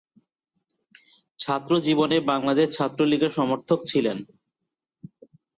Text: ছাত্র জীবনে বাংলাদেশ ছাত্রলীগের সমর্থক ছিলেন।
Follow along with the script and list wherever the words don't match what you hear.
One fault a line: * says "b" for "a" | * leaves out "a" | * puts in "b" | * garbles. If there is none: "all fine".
all fine